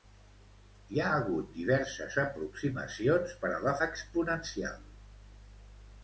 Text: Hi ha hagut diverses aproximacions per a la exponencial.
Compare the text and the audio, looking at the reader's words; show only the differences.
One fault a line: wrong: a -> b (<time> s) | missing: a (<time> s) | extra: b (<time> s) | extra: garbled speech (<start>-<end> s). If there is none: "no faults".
no faults